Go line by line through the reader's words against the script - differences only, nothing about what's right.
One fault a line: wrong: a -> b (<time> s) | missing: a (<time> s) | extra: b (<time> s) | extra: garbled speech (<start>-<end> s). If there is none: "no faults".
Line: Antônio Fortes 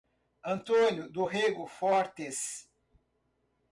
extra: do Rego (1.1 s)